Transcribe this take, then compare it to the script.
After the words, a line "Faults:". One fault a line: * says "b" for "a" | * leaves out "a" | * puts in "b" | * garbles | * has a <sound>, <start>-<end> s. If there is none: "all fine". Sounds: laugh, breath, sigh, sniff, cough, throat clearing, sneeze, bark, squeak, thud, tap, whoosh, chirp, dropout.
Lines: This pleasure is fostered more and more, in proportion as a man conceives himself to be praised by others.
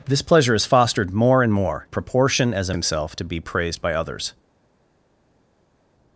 This pleasure is fostered more and more, proportion as a himself to be praised by others.
Faults:
* leaves out "in"
* leaves out "man conceives"